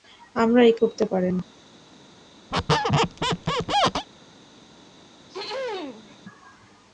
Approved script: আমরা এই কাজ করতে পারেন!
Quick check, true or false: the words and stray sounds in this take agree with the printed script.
false